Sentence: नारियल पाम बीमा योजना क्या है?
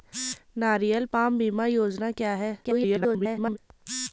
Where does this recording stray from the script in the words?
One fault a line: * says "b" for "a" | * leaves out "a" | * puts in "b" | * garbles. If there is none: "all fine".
* garbles